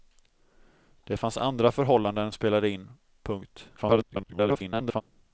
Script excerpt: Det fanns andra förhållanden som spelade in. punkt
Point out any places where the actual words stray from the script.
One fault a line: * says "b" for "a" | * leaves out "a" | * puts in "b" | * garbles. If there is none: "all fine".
* leaves out "som"
* garbles